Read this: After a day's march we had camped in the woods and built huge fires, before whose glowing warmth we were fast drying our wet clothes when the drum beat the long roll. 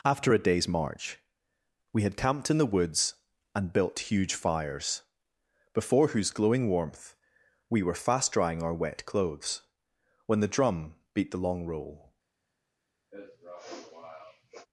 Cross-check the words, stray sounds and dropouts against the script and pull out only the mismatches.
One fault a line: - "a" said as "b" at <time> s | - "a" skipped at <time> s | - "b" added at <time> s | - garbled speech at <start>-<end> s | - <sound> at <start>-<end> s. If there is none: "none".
- sniff at 13.1-14.7 s